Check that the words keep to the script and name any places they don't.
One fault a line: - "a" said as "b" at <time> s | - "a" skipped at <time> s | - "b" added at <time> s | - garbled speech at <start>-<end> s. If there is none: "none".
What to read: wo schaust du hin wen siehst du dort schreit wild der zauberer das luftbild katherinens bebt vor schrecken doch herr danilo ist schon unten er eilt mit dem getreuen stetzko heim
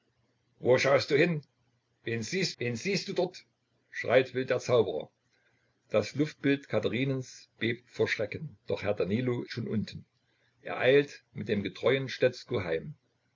- "wen siehst" added at 2.6 s
- "ist" skipped at 9.4 s